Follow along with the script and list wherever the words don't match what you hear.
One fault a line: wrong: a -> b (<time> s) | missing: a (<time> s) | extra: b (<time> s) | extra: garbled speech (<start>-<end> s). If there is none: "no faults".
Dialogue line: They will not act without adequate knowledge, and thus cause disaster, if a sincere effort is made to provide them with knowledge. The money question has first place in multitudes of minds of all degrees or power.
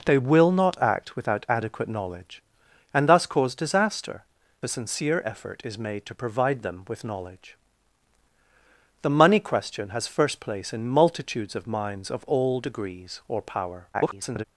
missing: if (4.2 s)
extra: garbled speech (13.9-14.4 s)